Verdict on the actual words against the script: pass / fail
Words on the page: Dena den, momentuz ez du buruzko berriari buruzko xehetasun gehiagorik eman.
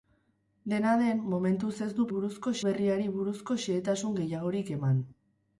pass